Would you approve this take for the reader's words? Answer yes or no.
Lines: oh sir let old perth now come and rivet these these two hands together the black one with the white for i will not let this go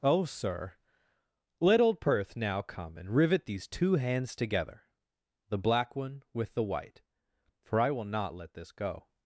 no